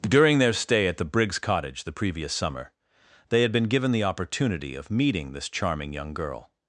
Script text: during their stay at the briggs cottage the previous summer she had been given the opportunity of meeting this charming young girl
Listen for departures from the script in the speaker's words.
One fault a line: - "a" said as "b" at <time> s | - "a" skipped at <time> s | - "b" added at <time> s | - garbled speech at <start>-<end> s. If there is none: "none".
- "she" said as "they" at 3.3 s